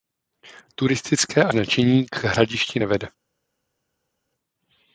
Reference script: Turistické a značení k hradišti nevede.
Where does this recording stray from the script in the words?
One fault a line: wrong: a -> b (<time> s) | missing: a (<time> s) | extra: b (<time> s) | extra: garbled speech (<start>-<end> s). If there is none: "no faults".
no faults